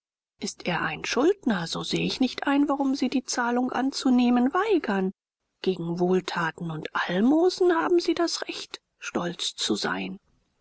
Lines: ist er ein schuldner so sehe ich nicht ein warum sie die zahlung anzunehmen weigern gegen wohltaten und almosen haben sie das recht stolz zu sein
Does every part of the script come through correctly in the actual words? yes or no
yes